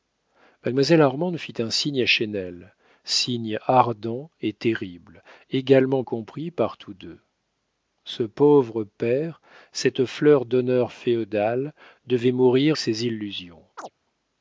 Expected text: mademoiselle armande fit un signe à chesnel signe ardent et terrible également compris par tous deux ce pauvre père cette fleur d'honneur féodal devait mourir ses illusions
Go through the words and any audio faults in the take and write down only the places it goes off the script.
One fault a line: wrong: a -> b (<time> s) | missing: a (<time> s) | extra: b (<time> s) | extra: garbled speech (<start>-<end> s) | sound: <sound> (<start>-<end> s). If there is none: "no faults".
sound: chirp (13.8-13.9 s)